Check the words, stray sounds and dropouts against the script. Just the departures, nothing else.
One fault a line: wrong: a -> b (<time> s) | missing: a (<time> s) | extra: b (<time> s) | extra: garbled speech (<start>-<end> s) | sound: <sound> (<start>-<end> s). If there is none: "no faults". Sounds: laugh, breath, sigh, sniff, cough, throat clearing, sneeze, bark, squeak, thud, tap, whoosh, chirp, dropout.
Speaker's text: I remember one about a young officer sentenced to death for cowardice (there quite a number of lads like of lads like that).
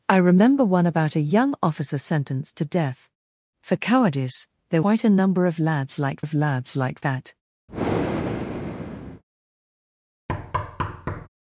sound: breath (7.7-9.2 s)
sound: thud (10.3-11.3 s)